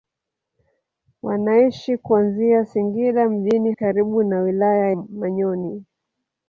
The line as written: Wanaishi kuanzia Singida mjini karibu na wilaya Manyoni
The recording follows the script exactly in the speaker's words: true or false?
true